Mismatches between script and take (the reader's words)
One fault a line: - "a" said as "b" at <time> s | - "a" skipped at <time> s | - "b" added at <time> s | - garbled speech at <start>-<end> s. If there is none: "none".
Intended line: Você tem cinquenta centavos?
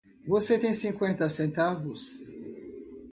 none